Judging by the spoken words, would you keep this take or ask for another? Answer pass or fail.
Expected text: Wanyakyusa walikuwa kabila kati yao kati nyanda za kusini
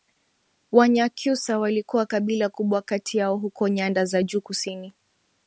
fail